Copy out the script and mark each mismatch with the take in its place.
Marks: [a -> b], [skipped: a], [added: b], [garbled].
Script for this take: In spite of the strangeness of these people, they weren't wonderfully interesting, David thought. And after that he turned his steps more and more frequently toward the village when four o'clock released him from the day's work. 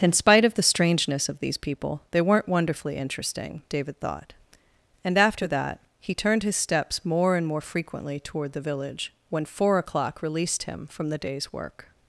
In spite of the strangeness of these people, they weren't wonderfully interesting, David thought. And after that he turned his steps more and more frequently toward the village when four o'clock released him from the day's work.